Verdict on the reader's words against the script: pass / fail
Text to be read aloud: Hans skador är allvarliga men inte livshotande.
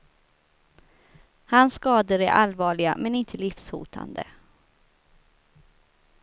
pass